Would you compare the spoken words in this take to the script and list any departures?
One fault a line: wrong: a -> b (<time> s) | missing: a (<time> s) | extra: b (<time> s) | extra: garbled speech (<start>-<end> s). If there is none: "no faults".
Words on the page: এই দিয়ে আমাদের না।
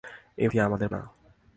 no faults